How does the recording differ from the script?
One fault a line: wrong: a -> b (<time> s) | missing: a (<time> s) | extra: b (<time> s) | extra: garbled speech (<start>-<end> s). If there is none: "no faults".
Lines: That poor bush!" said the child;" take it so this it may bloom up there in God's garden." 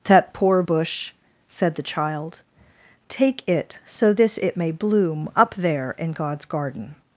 no faults